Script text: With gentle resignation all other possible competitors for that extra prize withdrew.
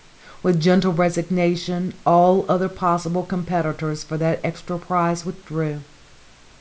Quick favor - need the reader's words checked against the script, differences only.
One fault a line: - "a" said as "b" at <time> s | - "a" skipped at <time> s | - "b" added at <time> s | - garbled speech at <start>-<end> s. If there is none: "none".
none